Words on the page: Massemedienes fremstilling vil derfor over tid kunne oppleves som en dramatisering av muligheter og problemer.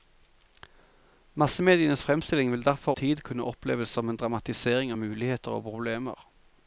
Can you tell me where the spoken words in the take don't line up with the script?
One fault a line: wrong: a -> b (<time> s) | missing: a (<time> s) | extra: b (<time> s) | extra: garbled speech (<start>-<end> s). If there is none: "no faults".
missing: over (2.9 s)